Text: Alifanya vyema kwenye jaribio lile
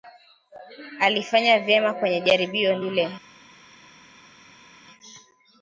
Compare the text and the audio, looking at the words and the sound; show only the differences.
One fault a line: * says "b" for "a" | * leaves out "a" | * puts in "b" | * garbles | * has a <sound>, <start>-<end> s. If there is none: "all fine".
all fine